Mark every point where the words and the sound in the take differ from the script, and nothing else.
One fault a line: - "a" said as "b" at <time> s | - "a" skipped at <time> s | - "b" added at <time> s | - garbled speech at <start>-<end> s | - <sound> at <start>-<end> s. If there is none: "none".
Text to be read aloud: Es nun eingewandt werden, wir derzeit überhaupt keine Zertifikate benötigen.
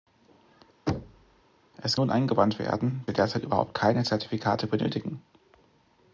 - thud at 0.9-1.4 s